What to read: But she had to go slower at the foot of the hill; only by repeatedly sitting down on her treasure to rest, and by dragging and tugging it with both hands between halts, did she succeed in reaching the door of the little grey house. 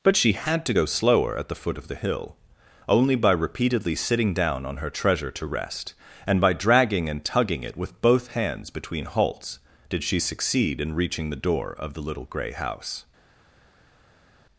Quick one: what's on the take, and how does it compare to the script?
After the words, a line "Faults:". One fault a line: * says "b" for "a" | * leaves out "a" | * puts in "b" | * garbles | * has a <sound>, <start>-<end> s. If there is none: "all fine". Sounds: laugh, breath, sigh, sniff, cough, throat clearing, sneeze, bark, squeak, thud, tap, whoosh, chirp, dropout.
But she had to go slower at the foot of the hill; only by repeatedly sitting down on her treasure to rest, and by dragging and tugging it with both hands between halts, did she succeed in reaching the door of the little grey house.
Faults:
all fine